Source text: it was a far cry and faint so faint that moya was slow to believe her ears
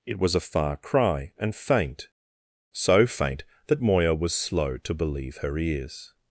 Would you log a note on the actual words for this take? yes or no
no